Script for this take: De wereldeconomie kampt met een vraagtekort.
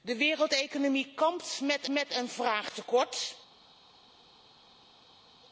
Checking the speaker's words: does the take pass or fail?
fail